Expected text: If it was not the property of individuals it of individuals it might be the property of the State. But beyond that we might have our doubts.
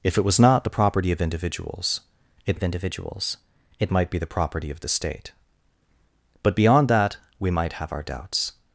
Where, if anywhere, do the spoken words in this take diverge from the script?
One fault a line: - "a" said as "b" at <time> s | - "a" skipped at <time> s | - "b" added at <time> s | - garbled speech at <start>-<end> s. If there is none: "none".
none